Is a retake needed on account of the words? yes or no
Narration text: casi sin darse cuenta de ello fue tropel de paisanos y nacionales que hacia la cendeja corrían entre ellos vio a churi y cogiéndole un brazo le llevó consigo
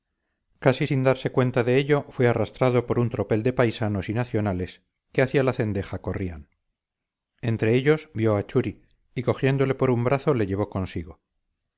yes